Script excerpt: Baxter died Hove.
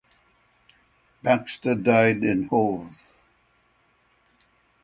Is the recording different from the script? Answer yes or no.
yes